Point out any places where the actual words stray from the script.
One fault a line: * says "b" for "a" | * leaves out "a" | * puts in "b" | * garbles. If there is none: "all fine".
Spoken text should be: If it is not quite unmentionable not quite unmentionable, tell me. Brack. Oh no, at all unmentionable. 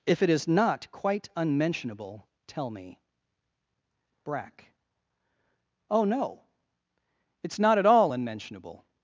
* leaves out "not quite unmentionable"
* puts in "it's not"